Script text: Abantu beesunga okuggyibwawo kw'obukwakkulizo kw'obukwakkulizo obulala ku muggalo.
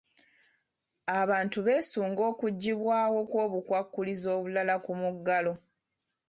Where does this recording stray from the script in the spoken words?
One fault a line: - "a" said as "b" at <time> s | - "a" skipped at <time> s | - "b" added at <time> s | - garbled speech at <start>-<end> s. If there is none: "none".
- "kw'obukwakkulizo" skipped at 4.3 s